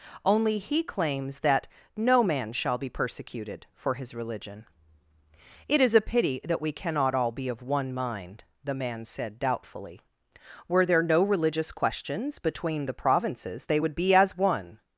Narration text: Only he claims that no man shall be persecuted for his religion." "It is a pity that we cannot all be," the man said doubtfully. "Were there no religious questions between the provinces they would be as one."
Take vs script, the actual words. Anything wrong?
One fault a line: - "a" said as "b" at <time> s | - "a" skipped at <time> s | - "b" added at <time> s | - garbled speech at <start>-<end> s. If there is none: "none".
- "of one mind" added at 7.5 s